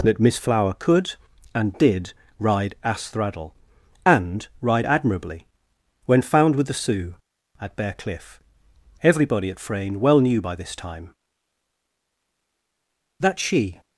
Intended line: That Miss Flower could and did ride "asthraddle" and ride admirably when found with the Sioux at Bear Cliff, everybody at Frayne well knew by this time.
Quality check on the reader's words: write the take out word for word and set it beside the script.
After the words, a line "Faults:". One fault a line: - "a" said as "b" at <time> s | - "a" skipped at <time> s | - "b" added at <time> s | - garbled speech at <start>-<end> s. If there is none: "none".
That Miss Flower could and did ride "asthraddle" and ride admirably when found with the Sioux at Bear Cliff, everybody at Frayne well knew by this time. That she
Faults:
- "That she" added at 13.2 s